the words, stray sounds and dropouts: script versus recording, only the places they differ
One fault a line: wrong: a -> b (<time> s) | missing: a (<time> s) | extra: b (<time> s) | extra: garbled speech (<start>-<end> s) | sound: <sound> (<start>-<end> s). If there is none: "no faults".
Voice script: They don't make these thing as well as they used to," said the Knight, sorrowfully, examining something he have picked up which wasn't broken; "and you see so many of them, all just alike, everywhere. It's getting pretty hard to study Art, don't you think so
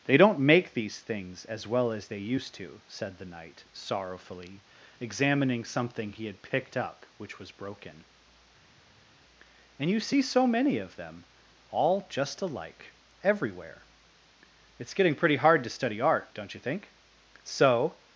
wrong: thing -> things (1.0 s)
wrong: have -> had (6.3 s)
wrong: wasn't -> was (7.4 s)